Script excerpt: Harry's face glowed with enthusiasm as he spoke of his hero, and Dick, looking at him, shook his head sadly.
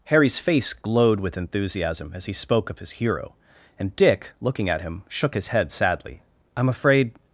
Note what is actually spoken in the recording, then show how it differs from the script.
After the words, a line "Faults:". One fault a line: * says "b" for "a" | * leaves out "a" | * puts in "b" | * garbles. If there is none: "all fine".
Harry's face glowed with enthusiasm as he spoke of his hero, and Dick, looking at him, shook his head sadly. "I'm afraid
Faults:
* puts in "I'm afraid"